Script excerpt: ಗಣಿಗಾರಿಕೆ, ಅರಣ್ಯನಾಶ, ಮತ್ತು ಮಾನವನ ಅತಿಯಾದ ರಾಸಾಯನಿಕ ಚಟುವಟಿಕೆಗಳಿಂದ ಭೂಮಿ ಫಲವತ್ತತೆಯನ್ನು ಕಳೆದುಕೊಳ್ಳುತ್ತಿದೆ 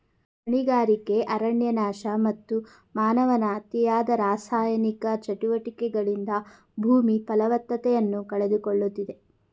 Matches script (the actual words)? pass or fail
pass